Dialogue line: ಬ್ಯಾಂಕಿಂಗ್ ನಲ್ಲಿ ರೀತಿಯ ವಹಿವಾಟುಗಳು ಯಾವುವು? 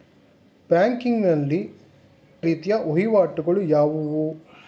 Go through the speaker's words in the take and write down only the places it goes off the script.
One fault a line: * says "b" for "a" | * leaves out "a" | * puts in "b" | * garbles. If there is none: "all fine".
all fine